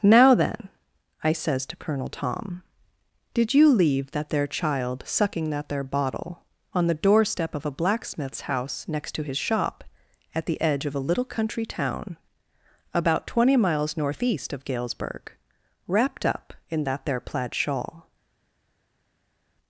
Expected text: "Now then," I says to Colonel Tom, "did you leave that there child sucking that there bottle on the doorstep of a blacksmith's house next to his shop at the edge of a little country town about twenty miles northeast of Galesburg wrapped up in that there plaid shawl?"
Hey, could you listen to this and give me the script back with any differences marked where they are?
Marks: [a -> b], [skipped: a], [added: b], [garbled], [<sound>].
"Now then," I says to Colonel Tom, "did you leave that there child sucking that there bottle on the doorstep of a blacksmith's house next to his shop at the edge of a little country town about twenty miles northeast of Galesburg wrapped up in that there plaid shawl?"